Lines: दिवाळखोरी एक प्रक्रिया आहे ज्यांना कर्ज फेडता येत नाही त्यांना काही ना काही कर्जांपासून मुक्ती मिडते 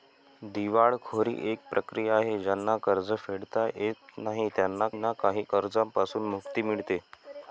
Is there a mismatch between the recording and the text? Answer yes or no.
yes